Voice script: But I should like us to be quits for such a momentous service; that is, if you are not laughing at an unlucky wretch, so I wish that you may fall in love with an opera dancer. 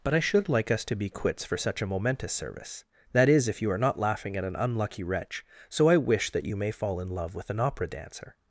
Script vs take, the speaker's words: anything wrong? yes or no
no